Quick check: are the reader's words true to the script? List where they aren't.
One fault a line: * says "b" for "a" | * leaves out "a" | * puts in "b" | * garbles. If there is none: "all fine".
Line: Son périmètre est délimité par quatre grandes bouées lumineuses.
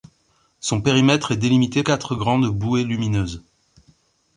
* leaves out "par"